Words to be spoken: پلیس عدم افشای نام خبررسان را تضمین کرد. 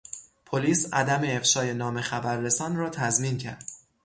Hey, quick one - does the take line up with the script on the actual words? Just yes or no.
yes